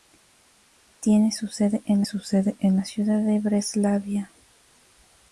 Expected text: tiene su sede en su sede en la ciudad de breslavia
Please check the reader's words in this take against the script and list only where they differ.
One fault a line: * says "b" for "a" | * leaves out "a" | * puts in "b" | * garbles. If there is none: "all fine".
all fine